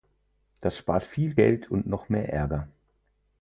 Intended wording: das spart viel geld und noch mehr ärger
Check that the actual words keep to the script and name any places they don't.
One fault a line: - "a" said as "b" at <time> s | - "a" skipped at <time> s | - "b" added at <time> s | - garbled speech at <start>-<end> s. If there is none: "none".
none